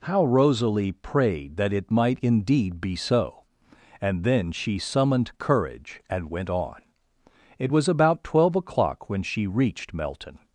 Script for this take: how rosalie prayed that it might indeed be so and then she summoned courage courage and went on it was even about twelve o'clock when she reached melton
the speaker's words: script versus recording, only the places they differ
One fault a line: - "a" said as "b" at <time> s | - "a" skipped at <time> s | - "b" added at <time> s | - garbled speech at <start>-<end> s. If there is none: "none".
- "courage" skipped at 6.0 s
- "even" skipped at 7.9 s